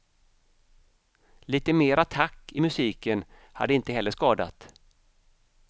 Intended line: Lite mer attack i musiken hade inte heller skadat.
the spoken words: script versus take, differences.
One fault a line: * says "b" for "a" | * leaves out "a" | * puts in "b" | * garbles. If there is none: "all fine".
all fine